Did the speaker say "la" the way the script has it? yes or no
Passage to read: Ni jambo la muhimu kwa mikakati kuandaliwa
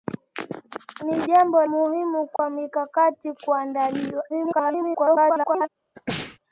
no